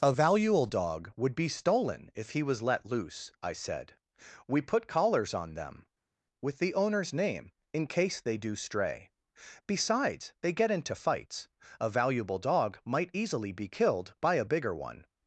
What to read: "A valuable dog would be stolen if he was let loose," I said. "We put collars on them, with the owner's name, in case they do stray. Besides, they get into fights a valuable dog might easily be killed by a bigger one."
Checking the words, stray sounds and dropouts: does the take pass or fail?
pass